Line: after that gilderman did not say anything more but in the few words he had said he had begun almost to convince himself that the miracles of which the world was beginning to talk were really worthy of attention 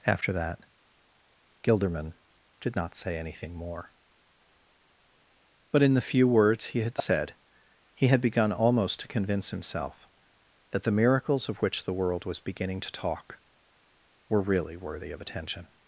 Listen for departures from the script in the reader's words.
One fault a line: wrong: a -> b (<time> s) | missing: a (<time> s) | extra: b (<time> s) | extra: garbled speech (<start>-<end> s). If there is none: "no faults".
no faults